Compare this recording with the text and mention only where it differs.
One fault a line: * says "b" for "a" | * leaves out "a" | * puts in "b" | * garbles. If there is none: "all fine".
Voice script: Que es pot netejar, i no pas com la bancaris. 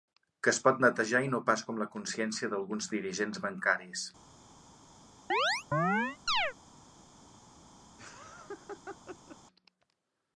* puts in "consciència d'alguns dirigents"